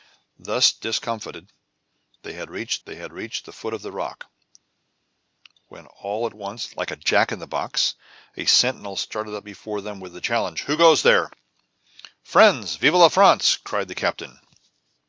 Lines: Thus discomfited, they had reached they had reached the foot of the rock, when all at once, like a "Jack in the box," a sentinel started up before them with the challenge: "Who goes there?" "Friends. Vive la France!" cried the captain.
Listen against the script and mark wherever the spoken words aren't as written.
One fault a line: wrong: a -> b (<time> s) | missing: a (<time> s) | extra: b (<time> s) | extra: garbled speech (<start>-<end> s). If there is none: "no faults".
no faults